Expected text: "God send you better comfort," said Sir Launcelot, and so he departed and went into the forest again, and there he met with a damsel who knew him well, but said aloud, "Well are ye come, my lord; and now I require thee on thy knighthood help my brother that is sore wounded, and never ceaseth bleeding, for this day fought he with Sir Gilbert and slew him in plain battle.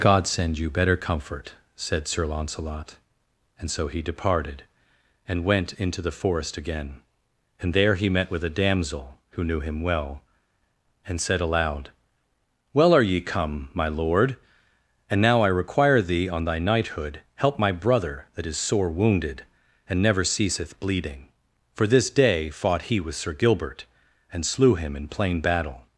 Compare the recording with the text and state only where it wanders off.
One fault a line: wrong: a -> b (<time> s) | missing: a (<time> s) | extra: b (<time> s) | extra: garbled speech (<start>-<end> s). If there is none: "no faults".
wrong: but -> and (11.1 s)